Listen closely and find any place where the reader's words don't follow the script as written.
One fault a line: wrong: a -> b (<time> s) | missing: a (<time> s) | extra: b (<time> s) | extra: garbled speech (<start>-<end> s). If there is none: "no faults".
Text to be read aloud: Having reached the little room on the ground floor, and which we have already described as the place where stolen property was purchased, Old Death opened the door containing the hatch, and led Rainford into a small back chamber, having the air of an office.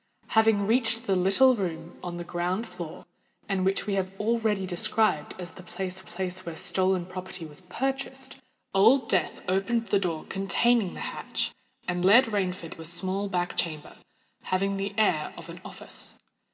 extra: place (6.0 s)
missing: into (12.7 s)